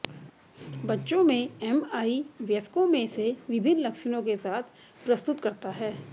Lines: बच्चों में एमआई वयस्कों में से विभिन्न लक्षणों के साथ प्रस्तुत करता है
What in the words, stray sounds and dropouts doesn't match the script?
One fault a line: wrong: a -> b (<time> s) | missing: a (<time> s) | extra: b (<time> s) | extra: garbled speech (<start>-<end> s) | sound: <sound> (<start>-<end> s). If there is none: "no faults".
no faults